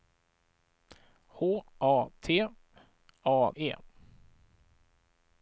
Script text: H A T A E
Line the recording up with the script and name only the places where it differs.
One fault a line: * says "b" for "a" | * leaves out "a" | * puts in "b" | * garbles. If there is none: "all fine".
all fine